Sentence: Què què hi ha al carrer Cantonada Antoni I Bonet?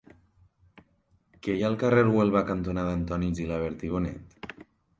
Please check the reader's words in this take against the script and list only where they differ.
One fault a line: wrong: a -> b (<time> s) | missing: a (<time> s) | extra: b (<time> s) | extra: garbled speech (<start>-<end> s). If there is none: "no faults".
missing: què (1.6 s)
extra: Huelva (2.1 s)
extra: Gilabert (3.4 s)